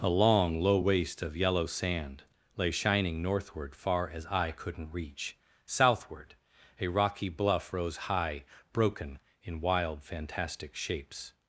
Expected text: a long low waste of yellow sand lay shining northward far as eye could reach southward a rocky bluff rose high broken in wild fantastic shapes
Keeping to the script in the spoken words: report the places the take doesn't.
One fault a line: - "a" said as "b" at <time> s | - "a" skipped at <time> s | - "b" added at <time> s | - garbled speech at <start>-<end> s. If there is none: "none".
- "could" said as "couldn't" at 4.5 s